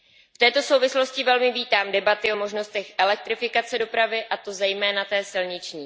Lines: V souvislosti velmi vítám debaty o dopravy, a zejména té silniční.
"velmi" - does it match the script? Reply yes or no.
yes